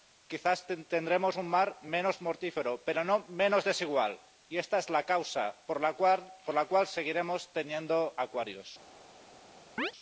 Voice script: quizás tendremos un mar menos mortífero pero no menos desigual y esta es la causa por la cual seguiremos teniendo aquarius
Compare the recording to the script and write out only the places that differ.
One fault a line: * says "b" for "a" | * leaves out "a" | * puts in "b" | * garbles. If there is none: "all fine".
all fine